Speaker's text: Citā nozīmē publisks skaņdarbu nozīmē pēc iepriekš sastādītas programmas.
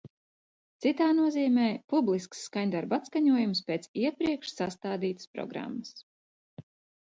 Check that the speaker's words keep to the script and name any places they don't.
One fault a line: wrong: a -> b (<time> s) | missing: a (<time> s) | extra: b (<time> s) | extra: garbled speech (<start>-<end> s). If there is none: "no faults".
wrong: nozīmē -> atskaņojums (3.0 s)